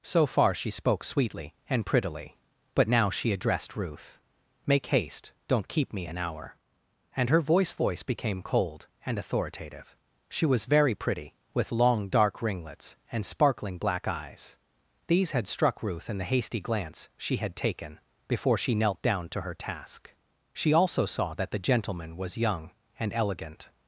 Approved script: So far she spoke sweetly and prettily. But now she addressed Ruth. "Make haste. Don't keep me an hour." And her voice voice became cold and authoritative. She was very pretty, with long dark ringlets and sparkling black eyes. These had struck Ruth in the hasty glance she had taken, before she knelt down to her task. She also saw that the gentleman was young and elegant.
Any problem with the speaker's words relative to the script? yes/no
no